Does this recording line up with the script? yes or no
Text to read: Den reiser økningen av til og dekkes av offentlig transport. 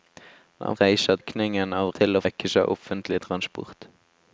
yes